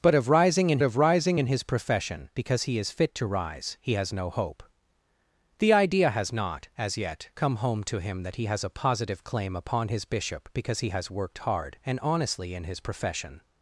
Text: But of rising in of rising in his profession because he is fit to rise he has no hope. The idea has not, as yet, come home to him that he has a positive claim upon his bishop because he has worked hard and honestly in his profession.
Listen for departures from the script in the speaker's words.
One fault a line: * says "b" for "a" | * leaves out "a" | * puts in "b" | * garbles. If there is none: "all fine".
all fine